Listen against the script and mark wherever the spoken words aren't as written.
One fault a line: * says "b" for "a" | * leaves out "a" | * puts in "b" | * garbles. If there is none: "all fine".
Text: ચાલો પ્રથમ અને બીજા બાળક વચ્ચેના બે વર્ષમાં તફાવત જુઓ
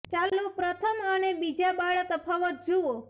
* leaves out "વચ્ચેના બે વર્ષમાં"